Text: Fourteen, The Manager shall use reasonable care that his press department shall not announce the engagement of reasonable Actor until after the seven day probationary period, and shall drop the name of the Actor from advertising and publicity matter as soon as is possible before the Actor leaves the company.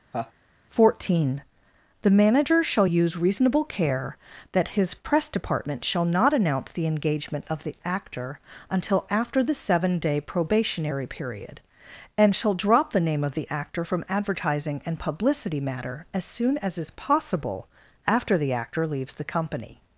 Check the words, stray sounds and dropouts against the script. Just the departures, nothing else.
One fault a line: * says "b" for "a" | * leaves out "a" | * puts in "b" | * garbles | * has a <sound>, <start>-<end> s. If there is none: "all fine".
* has a laugh, 0.1-0.3 s
* says "the" for "reasonable"
* says "after" for "before"